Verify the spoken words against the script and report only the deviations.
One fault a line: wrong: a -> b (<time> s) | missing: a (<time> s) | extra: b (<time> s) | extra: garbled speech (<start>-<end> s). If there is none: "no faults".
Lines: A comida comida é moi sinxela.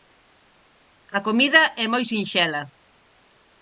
missing: comida (1.6 s)